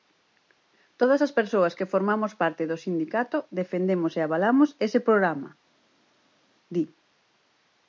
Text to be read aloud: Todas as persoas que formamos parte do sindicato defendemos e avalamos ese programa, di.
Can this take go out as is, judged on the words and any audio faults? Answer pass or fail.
pass